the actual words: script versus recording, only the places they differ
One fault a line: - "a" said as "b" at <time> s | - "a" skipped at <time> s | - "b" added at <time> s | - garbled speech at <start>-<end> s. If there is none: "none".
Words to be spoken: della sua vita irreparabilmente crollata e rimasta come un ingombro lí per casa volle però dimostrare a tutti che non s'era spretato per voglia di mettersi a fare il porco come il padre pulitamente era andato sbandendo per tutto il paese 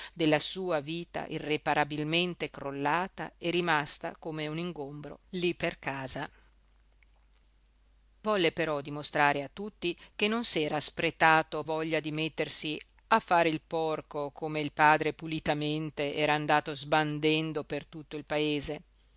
- "per" skipped at 11.6 s